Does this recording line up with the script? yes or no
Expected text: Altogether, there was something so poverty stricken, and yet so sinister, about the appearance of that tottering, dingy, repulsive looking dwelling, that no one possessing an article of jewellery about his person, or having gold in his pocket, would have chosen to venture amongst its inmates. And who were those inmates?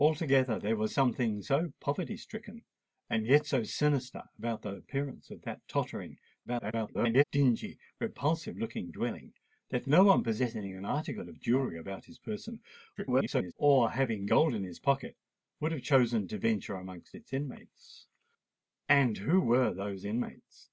no